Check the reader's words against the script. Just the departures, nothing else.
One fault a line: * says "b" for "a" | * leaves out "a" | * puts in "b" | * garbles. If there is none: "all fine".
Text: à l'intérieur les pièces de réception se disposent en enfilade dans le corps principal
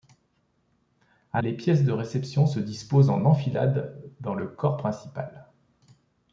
* leaves out "l'intérieur"